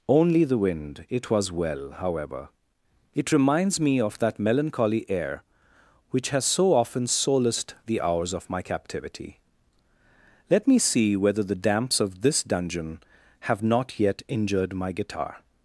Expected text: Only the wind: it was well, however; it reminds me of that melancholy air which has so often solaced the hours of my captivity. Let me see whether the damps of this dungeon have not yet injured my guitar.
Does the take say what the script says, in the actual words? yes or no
yes